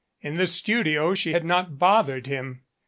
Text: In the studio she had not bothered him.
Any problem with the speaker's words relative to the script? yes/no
no